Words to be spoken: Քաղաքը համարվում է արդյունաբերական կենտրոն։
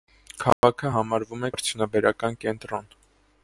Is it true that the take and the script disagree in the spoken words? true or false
false